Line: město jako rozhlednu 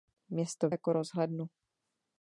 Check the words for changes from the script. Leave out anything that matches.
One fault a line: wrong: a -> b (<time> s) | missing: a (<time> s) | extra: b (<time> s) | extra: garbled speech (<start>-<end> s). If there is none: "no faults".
no faults